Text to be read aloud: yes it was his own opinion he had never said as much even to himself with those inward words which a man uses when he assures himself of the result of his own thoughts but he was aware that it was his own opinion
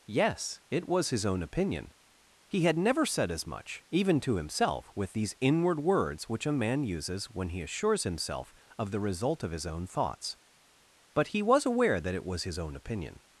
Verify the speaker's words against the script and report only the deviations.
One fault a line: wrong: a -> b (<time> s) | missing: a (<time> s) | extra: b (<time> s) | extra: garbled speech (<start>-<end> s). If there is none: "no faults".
wrong: those -> these (5.1 s)